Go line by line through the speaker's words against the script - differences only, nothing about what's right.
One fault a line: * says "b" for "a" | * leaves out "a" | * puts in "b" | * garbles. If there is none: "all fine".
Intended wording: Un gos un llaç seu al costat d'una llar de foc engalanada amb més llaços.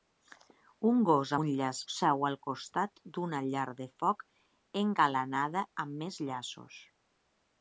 all fine